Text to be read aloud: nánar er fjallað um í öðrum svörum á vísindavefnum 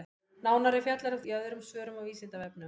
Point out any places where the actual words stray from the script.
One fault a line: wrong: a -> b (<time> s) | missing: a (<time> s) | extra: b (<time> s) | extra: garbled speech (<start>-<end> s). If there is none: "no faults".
no faults